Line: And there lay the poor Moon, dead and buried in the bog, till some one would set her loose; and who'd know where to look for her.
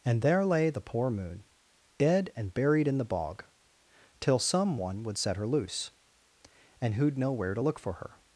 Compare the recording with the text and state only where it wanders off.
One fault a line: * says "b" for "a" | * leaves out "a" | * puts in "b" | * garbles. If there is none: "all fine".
all fine